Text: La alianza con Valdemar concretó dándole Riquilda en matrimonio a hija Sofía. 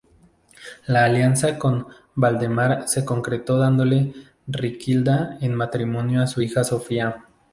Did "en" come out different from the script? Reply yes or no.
no